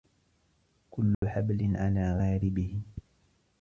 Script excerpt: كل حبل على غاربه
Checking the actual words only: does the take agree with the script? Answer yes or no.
yes